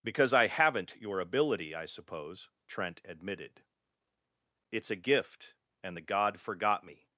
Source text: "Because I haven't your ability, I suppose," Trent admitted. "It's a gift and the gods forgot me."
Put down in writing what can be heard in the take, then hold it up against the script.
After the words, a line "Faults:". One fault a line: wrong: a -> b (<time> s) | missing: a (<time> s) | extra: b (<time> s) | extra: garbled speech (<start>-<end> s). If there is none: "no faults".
"Because I haven't your ability, I suppose," Trent admitted. "It's a gift and the god forgot me."
Faults:
wrong: gods -> god (6.0 s)